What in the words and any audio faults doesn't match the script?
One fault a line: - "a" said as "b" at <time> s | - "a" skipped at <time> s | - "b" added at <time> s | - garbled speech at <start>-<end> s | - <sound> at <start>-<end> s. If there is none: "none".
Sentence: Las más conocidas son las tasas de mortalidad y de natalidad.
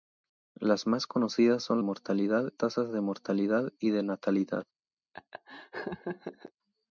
- "las" said as "mortalidad" at 1.8 s
- laugh at 5.1-6.5 s